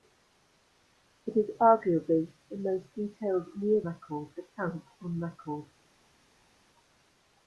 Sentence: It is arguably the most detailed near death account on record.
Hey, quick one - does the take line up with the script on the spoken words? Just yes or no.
no